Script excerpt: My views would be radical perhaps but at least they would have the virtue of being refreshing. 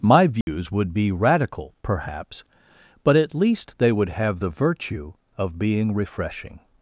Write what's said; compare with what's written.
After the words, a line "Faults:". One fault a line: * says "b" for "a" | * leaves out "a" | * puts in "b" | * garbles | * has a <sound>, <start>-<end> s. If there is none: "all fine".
My views would be radical perhaps but at least they would have the virtue of being refreshing.
Faults:
* has a dropout, 0.4-0.5 s